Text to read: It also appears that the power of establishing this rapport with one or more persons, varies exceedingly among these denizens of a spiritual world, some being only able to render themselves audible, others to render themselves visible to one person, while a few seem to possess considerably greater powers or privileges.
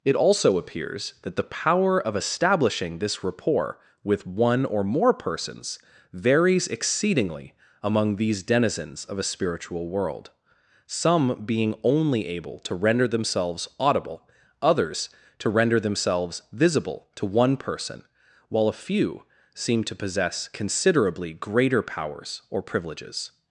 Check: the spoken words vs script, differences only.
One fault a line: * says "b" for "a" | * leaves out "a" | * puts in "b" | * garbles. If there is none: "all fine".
all fine